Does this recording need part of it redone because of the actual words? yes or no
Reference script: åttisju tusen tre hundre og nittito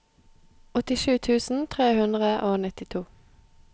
no